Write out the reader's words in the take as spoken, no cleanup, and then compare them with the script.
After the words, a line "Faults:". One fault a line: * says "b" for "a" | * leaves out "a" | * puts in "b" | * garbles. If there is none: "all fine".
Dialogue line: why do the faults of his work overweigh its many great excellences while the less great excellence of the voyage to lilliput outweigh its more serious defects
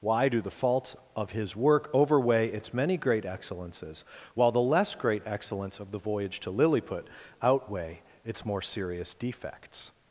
why do the faults of his work overweigh its many great excellences while the less great excellence of the voyage to lilliput outweigh its more serious defects
Faults:
all fine